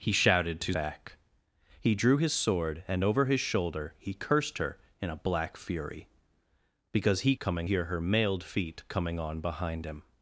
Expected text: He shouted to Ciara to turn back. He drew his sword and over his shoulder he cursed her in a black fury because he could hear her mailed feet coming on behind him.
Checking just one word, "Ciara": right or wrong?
wrong